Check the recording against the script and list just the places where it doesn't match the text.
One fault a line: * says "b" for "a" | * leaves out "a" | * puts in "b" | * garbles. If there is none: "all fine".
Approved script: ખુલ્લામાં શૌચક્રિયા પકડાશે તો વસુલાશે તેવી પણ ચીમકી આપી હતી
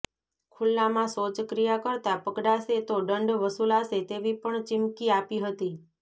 * puts in "કરતા"
* puts in "દંડ"